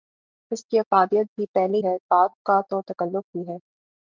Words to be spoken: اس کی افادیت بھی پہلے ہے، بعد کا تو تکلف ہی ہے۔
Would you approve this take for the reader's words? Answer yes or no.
yes